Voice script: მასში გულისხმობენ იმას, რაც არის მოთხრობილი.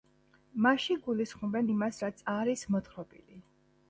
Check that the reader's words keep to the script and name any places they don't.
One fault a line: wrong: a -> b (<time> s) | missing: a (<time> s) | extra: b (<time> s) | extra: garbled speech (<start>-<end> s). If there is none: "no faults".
no faults